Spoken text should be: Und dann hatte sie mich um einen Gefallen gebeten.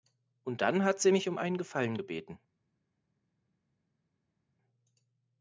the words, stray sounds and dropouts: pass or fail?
fail